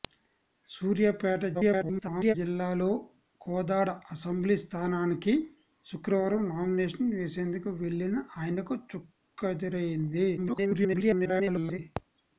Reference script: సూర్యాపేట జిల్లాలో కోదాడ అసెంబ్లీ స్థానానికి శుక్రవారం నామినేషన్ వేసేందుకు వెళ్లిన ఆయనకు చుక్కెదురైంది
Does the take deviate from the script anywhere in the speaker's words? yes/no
yes